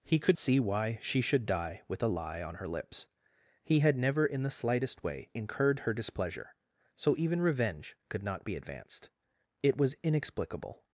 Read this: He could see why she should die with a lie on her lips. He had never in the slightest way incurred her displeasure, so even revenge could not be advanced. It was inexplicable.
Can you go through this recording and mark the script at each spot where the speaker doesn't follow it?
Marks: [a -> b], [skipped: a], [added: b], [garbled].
He could see why she should die with a lie on her lips. He had never in the slightest way incurred her displeasure, so even revenge could not be advanced. It was inexplicable.